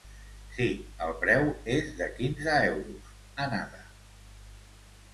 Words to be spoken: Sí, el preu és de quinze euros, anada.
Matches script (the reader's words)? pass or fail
pass